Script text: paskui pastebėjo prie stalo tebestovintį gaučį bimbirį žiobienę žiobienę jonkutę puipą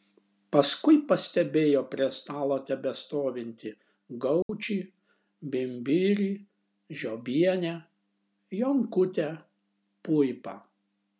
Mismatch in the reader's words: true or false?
true